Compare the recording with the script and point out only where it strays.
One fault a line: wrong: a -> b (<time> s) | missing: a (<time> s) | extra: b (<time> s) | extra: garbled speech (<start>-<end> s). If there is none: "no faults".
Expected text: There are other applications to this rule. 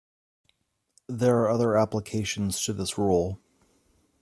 no faults